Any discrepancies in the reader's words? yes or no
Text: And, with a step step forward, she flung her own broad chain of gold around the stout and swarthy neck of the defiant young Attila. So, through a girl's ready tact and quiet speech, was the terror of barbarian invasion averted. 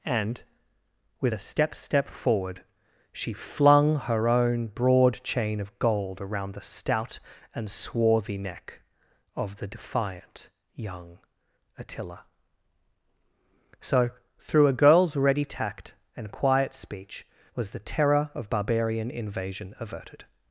no